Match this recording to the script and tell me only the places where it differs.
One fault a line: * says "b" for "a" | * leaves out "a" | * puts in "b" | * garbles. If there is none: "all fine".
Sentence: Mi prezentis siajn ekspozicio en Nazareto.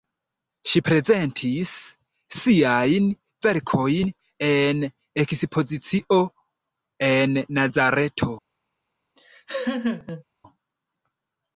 * says "Ŝi" for "Mi"
* puts in "verkojn en"